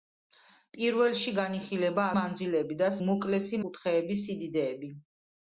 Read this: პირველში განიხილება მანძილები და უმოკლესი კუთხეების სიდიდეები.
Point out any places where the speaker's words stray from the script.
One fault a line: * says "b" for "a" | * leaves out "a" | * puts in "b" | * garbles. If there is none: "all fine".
all fine